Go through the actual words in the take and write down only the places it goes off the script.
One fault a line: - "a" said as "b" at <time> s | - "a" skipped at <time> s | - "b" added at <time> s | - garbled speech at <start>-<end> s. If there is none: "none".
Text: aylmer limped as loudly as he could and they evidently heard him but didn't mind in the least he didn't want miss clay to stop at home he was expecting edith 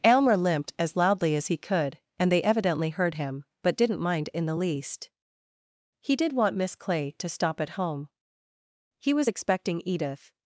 - "didn't" said as "did" at 6.2 s